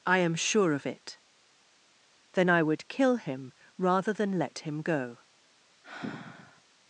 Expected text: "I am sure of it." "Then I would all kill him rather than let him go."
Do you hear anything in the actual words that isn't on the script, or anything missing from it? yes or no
yes